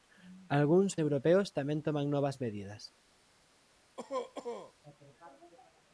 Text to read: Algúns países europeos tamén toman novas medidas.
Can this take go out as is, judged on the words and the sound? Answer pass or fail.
fail